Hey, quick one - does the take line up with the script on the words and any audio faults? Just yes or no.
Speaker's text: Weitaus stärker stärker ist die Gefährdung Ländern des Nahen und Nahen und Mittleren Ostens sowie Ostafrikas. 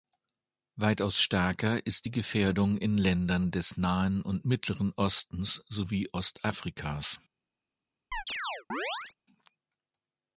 no